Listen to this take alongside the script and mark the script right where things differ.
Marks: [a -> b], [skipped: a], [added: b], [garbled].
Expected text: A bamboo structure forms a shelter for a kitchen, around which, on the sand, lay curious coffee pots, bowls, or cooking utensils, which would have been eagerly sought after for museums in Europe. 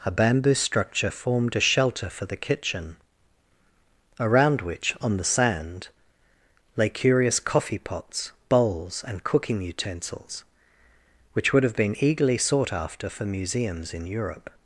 A bamboo structure [forms -> formed] a shelter for [a -> the] kitchen, around which, on the sand, lay curious coffee pots, bowls, [or -> and] cooking utensils, which would have been eagerly sought after for museums in Europe.